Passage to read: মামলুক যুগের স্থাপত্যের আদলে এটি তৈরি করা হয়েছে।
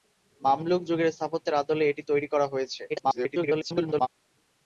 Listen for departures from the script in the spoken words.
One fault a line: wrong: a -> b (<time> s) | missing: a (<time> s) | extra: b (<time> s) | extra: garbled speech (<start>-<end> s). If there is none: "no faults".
extra: garbled speech (2.9-4.1 s)